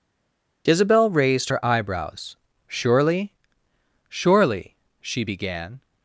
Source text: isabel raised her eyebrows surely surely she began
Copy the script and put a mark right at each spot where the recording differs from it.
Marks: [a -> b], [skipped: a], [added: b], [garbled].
isabel raised her eyebrows surely surely she began